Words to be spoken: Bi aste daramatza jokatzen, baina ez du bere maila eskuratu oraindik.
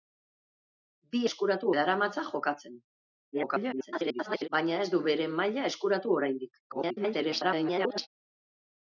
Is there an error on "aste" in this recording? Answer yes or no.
yes